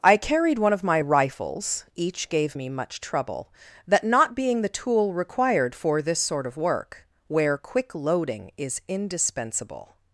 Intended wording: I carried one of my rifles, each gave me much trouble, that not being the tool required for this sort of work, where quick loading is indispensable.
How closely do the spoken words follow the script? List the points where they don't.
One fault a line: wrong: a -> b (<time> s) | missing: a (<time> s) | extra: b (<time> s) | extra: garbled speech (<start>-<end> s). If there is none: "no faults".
no faults